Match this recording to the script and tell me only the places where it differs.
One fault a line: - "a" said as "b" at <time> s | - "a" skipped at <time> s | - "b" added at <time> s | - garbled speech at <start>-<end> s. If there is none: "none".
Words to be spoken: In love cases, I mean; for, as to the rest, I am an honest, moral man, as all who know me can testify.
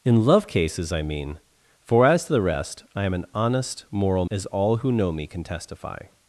- "man" skipped at 4.2 s